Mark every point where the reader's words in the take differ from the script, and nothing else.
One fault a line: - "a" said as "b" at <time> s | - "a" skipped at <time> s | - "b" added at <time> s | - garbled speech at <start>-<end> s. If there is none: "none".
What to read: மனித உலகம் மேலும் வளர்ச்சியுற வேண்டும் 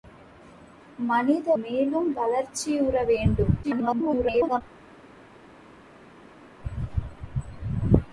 - "உலகம்" skipped at 1.5 s
- garbled speech at 3.6-4.6 s